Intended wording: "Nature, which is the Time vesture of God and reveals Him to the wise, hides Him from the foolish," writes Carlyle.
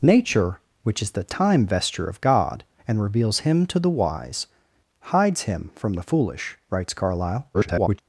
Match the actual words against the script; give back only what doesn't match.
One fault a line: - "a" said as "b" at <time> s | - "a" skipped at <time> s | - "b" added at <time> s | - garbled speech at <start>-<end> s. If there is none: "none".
- garbled speech at 7.5-8.0 s